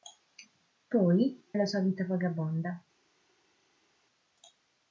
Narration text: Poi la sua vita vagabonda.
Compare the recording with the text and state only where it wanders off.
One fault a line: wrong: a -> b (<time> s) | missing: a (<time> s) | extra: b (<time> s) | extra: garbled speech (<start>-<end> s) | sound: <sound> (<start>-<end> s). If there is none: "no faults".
no faults